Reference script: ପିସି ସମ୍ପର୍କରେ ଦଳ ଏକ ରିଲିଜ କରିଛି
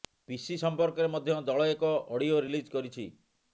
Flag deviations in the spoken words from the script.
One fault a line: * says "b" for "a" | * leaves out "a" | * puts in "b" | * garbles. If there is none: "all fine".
* puts in "ମଧ୍ୟ"
* puts in "ଅଡିଓ"